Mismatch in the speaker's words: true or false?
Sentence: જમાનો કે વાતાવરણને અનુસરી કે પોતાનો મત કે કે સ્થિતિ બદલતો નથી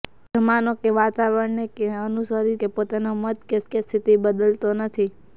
false